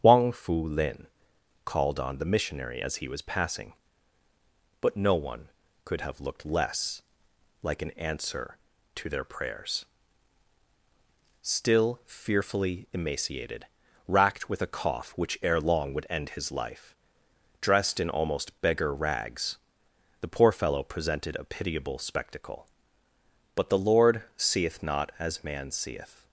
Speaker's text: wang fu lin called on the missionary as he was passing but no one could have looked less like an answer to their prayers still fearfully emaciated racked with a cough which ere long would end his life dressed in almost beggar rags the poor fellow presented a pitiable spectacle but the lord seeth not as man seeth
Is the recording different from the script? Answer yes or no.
no